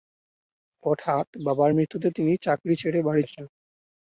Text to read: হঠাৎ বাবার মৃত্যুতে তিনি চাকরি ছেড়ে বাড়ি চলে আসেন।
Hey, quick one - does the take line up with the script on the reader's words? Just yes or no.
no